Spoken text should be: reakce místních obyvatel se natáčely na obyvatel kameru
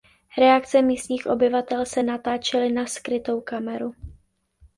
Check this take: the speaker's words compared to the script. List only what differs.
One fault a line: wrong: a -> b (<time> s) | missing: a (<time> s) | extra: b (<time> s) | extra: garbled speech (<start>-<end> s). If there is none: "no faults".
wrong: obyvatel -> skrytou (2.9 s)